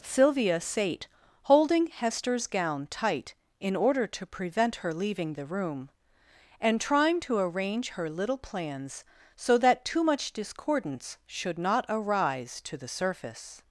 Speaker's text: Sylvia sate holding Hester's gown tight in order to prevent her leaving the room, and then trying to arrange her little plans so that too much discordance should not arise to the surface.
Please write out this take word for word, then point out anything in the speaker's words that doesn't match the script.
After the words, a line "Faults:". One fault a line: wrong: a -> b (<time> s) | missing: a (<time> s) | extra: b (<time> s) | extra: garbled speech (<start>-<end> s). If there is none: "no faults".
Sylvia sate holding Hester's gown tight in order to prevent her leaving the room, and trying to arrange her little plans so that too much discordance should not arise to the surface.
Faults:
missing: then (6.8 s)